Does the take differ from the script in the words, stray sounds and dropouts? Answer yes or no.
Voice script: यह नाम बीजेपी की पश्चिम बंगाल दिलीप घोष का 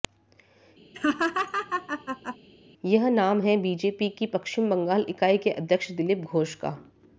yes